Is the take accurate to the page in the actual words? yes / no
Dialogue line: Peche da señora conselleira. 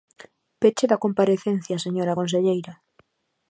no